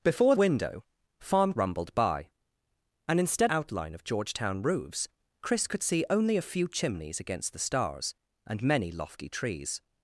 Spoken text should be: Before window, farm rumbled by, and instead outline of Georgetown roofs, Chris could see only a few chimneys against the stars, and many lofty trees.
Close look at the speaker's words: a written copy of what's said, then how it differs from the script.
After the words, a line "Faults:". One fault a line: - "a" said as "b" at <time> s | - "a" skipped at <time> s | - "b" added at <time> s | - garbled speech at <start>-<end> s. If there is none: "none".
Before window, farm rumbled by, and instead outline of Georgetown roofs, Chris could see only a few chimneys against the stars, and many lofty trees.
Faults:
none